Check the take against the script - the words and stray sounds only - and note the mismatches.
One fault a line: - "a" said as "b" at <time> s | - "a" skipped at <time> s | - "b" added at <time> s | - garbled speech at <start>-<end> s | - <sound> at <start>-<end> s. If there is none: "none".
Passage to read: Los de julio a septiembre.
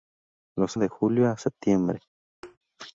- thud at 2.4-2.6 s